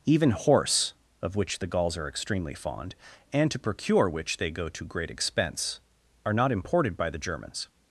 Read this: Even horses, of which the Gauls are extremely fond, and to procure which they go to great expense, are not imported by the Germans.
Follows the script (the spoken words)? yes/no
no